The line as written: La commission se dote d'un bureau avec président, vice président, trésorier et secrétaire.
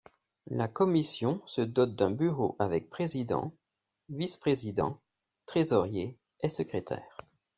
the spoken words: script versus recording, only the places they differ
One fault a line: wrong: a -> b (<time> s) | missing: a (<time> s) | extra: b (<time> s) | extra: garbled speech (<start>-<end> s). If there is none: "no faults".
no faults